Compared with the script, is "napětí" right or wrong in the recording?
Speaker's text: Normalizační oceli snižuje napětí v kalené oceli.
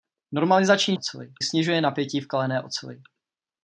right